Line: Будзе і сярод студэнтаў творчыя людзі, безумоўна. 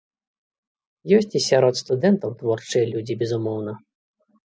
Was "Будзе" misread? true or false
true